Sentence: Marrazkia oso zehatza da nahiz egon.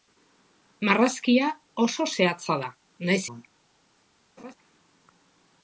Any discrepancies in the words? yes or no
no